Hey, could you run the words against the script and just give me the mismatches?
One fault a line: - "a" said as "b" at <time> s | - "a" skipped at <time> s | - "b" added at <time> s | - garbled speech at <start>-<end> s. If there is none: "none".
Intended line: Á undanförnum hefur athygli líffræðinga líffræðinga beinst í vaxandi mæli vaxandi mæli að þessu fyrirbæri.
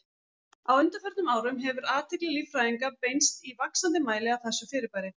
- "árum" added at 1.3 s
- "líffræðinga" skipped at 2.9 s
- "vaxandi mæli" skipped at 4.4 s